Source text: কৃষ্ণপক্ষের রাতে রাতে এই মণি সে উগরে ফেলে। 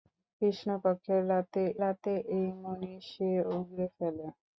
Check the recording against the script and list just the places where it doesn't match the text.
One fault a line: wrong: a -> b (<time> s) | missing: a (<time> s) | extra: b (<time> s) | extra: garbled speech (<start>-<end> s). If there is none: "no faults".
no faults